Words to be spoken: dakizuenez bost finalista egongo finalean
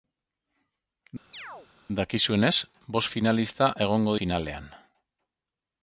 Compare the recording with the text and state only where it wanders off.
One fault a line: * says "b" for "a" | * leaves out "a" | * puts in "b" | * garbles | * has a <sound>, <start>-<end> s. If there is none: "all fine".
* has a chirp, 1.3-1.7 s